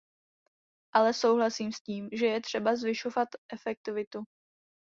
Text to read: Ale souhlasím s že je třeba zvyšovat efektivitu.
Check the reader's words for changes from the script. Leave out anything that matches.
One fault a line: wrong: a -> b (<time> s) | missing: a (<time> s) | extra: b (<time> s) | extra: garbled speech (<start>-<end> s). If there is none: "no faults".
extra: tím (1.8 s)